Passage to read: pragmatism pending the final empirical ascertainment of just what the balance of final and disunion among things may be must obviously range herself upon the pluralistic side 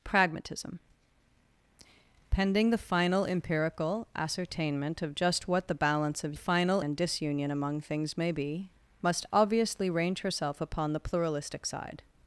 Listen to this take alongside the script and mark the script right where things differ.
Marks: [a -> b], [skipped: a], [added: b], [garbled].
pragmatism pending the final empirical ascertainment of just what the balance of final and disunion among things may be must obviously range herself upon the pluralistic side